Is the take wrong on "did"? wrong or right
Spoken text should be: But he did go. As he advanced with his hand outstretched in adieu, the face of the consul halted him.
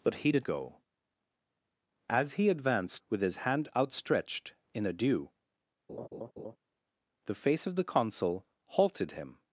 right